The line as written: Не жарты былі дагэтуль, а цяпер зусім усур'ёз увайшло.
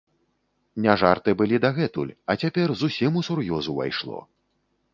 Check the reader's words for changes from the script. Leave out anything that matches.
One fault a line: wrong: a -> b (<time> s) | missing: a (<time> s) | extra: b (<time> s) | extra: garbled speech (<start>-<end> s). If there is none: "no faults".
no faults